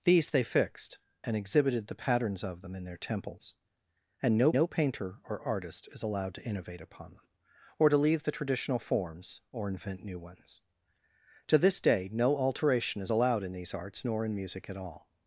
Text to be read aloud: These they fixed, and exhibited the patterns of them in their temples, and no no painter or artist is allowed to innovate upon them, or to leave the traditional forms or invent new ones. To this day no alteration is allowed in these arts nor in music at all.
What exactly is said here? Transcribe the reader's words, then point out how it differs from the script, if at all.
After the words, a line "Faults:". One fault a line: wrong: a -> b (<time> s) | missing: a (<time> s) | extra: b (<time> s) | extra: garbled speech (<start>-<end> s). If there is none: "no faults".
These they fixed, and exhibited the patterns of them in their temples, and no no painter or artist is allowed to innovate upon them, or to leave the traditional forms or invent new ones. To this day no alteration is allowed in these arts nor in music at all.
Faults:
no faults